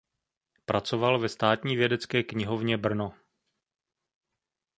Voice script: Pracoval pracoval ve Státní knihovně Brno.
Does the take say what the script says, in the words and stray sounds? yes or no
no